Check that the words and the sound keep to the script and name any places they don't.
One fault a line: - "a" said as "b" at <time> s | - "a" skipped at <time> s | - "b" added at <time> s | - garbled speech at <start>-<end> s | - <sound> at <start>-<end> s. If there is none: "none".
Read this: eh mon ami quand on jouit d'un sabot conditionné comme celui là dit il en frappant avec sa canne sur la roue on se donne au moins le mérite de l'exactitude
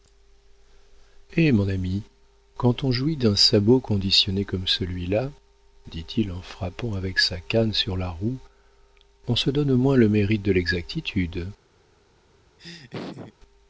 - laugh at 12.6-13.3 s